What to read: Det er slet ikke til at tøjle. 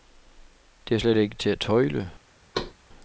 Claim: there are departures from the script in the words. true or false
false